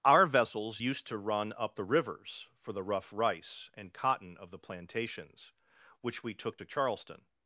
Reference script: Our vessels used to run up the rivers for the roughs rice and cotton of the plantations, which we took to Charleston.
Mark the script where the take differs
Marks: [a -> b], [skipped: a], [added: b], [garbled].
Our vessels used to run up the rivers for the [roughs -> rough] rice and cotton of the plantations, which we took to Charleston.